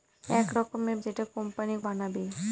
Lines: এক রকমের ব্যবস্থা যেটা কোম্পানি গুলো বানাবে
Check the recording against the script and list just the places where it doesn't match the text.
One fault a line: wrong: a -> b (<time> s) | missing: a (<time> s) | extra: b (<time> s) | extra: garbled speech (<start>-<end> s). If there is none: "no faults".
missing: ব্যবস্থা (1.0 s)
missing: গুলো (1.7 s)